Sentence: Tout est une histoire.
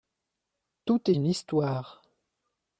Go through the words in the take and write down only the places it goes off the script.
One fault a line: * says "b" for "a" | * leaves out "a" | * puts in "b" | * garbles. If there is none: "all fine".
* leaves out "est"